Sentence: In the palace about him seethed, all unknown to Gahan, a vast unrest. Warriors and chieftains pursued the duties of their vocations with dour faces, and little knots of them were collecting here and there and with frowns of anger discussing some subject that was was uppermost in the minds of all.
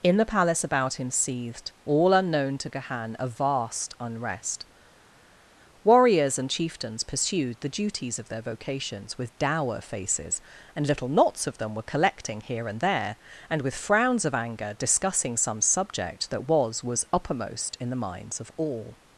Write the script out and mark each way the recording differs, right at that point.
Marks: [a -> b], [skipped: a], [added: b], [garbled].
In the palace about him seethed, all unknown to Gahan, a vast unrest. Warriors and chieftains pursued the duties of their vocations with dour faces, and little knots of them were collecting here and there and with frowns of anger discussing some subject that was was uppermost in the minds of all.